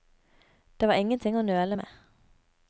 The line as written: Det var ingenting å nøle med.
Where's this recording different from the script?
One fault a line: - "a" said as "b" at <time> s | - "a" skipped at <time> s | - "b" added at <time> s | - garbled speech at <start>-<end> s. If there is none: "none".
none